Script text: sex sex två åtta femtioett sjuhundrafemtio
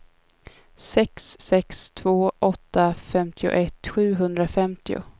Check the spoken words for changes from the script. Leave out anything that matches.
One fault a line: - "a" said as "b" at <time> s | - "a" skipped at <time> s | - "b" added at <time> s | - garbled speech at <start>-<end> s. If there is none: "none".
none